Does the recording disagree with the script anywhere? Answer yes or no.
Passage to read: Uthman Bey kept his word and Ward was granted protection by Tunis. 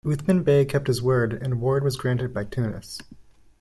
yes